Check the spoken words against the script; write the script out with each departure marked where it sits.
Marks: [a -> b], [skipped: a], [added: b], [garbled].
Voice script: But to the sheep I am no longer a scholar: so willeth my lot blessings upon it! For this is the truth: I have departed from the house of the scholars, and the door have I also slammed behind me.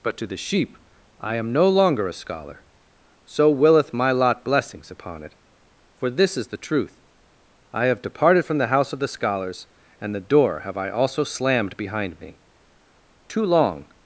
But to the sheep I am no longer a scholar: so willeth my lot blessings upon it! For this is the truth: I have departed from the house of the scholars, and the door have I also slammed behind me. [added: Too long]